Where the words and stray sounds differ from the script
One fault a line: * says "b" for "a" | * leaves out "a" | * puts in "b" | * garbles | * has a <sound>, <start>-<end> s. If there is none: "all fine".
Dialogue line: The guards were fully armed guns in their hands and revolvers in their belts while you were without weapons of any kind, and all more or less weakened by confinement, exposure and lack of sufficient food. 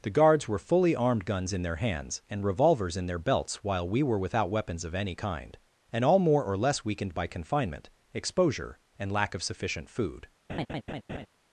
* says "we" for "you"
* has a laugh, 10.5-11.3 s